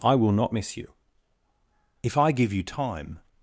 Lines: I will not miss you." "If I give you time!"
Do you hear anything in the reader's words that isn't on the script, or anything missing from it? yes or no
no